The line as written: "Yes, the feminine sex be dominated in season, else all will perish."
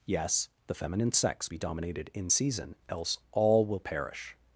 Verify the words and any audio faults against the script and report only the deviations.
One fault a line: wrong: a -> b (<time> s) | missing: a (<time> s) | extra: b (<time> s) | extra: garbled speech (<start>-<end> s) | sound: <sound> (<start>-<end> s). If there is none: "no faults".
no faults